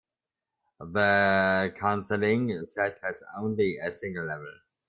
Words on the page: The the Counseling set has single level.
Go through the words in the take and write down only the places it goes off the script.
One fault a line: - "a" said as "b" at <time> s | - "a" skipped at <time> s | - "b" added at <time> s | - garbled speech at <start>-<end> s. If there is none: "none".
- "the" skipped at 1.8 s
- "only a" added at 3.4 s